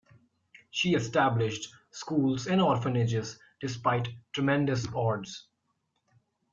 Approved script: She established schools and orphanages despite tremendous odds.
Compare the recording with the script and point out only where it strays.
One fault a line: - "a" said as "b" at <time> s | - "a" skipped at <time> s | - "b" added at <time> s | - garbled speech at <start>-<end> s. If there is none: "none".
none